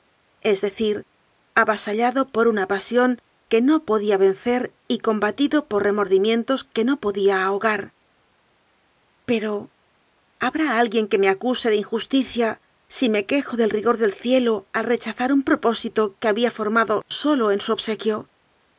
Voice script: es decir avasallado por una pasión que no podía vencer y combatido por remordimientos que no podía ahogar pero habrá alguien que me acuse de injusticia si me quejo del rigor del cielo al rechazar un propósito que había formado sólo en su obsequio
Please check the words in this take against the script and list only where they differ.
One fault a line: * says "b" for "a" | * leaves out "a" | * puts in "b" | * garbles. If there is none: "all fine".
all fine